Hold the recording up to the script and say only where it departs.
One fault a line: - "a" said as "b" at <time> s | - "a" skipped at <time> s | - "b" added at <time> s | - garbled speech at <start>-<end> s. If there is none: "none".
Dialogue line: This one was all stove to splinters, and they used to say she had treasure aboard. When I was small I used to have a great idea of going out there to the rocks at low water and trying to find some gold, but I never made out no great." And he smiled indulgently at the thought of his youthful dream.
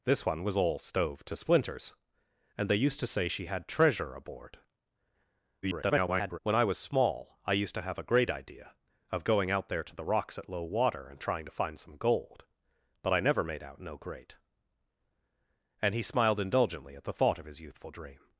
- garbled speech at 5.6-6.4 s